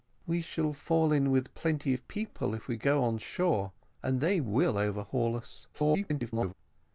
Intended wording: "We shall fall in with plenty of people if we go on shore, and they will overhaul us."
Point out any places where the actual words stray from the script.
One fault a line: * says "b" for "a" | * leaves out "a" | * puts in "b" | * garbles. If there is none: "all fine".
* garbles